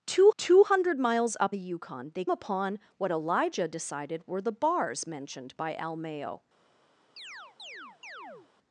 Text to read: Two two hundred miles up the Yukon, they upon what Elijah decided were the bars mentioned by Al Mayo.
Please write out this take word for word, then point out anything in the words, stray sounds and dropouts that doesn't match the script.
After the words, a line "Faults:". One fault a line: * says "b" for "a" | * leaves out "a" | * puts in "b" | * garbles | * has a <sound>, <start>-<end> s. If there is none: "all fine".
Two two hundred miles up the Yukon, they upon what Elijah decided were the bars mentioned by Al Mayo.
Faults:
* has a chirp, 7.2-8.5 s